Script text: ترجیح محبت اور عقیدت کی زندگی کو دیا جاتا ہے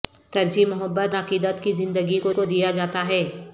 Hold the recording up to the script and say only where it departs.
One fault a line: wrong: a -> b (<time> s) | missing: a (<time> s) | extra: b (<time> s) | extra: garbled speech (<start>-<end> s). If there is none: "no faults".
missing: اور (1.1 s)
extra: کو (2.3 s)